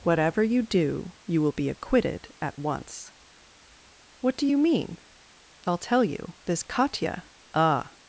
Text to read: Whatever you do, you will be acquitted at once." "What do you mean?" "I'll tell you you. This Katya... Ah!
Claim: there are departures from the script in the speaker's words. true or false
true